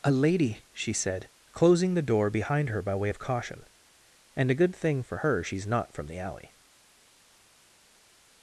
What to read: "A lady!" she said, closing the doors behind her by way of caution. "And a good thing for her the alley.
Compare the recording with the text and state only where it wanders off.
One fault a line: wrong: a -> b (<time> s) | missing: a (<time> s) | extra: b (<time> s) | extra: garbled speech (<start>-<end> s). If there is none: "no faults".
wrong: doors -> door (2.0 s)
extra: she's not from (5.4 s)